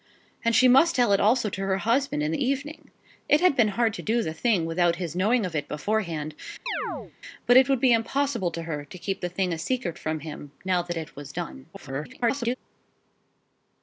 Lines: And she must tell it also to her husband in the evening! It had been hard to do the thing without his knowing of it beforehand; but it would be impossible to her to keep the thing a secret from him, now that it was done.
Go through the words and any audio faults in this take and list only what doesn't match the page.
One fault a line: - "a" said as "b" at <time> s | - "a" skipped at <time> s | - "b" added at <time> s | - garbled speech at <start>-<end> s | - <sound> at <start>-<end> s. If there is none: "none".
- chirp at 6.7-7.1 s
- garbled speech at 11.7-12.6 s